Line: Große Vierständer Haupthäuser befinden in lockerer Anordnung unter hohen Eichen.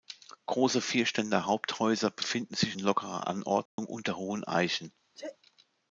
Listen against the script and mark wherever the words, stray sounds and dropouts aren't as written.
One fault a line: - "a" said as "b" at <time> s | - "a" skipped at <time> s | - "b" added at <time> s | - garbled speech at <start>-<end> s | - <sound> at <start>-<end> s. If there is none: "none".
- "sich" added at 2.5 s
- dropout at 3.7-3.8 s
- sneeze at 5.2-5.4 s